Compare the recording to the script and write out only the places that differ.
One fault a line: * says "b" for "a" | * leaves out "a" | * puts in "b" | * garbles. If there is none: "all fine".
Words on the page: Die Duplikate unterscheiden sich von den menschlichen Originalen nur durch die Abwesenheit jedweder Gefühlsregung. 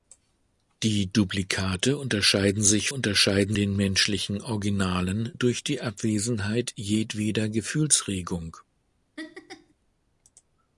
* says "unterscheiden" for "von"
* leaves out "nur"